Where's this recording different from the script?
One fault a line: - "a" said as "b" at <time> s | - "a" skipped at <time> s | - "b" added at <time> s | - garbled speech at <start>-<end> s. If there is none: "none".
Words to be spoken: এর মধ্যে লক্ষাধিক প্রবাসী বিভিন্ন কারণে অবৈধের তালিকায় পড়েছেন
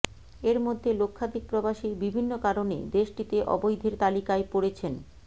- "দেশটিতে" added at 2.9 s